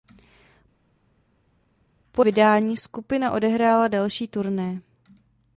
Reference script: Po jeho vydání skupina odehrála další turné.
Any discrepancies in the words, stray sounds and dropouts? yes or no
yes